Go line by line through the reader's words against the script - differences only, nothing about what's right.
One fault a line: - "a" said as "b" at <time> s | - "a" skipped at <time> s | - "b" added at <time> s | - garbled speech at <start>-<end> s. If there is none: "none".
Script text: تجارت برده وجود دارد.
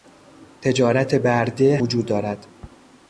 none